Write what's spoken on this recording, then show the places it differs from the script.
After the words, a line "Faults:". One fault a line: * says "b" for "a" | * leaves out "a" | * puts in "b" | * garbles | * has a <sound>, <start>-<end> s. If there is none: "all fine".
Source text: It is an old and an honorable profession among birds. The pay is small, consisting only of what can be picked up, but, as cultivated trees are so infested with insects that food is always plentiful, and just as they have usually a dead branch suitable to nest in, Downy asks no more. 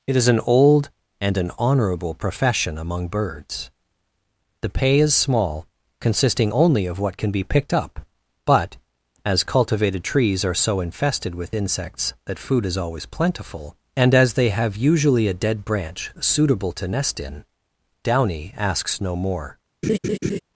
It is an old and an honorable profession among birds. The pay is small, consisting only of what can be picked up, but, as cultivated trees are so infested with insects that food is always plentiful, and as they have usually a dead branch suitable to nest in, Downy asks no more.
Faults:
* leaves out "just"
* has a laugh, 19.8-20.4 s